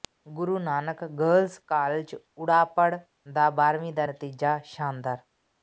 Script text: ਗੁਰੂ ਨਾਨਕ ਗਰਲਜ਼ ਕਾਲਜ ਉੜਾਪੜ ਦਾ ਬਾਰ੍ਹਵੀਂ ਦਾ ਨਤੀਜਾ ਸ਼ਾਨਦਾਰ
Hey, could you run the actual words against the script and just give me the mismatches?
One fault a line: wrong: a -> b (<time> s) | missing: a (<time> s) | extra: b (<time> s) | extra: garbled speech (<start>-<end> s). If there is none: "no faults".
no faults